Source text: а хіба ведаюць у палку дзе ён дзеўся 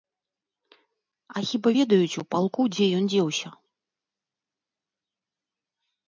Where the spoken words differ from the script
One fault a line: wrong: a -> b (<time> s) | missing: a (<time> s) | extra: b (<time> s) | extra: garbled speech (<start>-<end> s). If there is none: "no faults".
no faults